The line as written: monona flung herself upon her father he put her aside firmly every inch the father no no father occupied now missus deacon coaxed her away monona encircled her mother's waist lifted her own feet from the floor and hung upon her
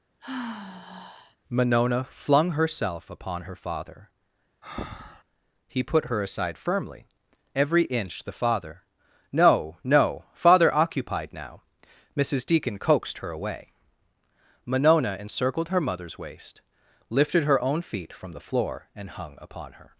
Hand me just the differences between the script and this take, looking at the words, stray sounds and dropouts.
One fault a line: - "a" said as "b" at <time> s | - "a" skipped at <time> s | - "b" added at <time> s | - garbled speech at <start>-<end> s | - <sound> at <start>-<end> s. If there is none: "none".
- sigh at 0.2-1.4 s
- breath at 4.6-5.2 s